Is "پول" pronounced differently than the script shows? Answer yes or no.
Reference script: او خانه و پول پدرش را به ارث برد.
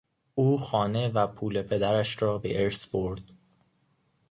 no